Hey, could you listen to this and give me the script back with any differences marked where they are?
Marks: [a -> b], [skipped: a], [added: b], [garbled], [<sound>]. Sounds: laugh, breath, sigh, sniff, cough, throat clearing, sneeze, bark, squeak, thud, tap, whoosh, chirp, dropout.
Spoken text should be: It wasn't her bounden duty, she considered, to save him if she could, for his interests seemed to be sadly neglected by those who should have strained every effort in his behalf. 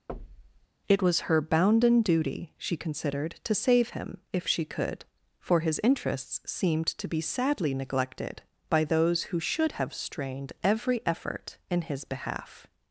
[thud] It [wasn't -> was] her bounden duty, she considered, to save him if she could, for his interests seemed to be sadly neglected by those who should have strained every effort in his behalf.